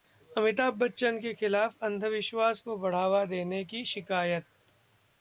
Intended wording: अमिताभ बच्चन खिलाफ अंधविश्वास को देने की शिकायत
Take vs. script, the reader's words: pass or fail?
fail